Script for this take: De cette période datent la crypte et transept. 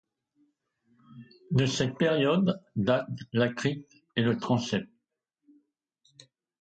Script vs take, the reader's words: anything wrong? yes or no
yes